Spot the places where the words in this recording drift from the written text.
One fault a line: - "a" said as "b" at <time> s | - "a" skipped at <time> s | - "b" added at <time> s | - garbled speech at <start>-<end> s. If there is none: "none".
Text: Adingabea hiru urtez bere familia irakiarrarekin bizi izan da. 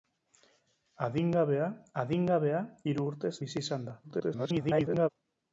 - "adingabea" added at 2.0 s
- "bere familia irakiarrarekin" skipped at 3.3 s
- garbled speech at 4.0-5.1 s